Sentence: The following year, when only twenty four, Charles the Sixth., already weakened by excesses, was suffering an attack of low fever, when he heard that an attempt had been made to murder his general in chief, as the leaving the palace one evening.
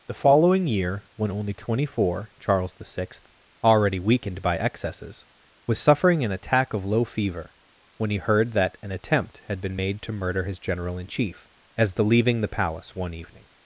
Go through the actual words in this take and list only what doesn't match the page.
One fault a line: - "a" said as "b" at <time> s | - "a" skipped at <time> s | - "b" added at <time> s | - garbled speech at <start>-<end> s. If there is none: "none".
none